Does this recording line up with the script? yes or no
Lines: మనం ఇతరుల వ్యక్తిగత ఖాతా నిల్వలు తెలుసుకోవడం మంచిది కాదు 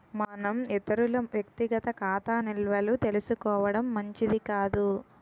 yes